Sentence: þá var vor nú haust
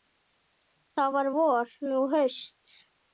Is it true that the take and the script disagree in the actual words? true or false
false